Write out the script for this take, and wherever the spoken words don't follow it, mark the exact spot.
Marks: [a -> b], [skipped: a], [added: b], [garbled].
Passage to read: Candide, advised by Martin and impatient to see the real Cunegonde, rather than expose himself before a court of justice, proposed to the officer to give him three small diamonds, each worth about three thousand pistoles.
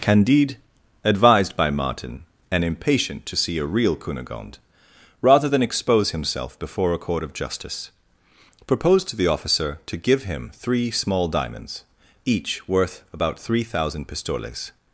Candide, advised by Martin and impatient to see [the -> a] real Cunegonde, rather than expose himself before a court of justice, proposed to the officer to give him three small diamonds, each worth about three thousand pistoles.